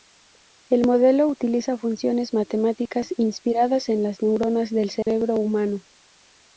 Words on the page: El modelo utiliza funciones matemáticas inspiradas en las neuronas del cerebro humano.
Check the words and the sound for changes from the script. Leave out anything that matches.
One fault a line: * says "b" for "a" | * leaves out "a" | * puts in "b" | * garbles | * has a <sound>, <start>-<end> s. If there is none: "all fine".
* has a dropout, 5.0-5.1 s